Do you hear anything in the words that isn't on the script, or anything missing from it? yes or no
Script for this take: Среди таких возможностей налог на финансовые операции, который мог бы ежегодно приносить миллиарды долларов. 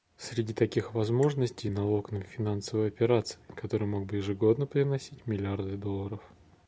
no